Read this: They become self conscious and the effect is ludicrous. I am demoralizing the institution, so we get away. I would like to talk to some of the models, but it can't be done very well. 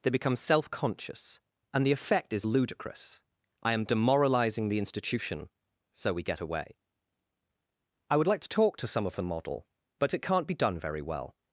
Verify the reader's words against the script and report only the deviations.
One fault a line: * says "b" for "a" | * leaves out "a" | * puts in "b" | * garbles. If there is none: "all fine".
* says "model" for "models"